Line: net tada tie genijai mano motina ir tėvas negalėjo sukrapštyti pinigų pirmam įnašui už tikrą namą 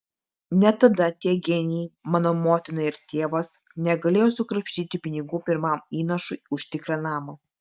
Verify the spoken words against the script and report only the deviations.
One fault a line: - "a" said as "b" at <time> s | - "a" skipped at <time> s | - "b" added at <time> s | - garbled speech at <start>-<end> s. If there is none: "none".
none